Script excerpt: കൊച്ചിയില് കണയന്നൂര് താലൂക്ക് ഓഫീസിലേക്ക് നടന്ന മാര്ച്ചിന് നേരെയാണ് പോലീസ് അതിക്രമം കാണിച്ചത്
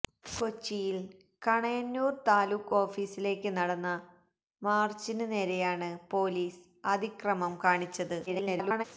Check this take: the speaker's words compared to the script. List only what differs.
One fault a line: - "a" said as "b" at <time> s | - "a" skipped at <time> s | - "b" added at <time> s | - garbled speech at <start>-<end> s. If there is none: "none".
- garbled speech at 8.3-8.8 s